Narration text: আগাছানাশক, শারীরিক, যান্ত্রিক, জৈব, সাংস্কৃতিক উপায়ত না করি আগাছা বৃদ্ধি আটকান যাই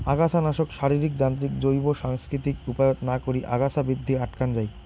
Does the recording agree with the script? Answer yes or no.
yes